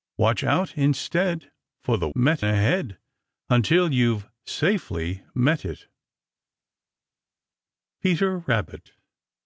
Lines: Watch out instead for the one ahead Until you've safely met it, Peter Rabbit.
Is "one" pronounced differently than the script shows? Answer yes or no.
yes